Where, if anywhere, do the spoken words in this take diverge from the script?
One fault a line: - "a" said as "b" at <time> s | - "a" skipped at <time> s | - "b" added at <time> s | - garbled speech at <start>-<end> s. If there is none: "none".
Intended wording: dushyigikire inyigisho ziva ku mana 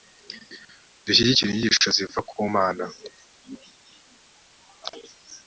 none